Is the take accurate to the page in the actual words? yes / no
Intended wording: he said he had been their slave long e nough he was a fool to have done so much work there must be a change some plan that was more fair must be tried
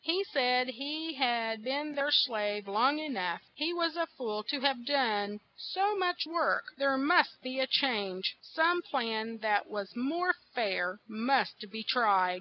yes